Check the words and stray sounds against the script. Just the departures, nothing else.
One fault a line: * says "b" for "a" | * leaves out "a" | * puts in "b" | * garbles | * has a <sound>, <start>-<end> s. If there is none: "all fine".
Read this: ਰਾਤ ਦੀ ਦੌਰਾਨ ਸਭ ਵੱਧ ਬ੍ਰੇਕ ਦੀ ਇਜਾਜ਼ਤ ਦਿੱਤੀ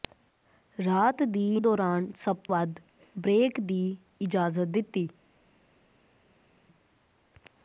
all fine